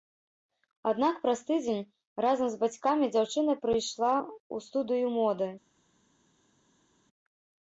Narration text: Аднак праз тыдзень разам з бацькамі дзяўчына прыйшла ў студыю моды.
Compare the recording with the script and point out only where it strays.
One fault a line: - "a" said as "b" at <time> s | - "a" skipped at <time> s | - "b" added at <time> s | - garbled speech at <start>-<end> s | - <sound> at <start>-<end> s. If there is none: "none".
none